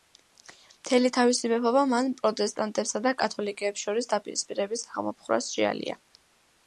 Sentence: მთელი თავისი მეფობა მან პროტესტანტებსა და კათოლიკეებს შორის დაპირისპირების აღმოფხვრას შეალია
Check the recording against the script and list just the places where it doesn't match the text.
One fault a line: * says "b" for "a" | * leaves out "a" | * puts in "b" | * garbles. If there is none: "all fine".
all fine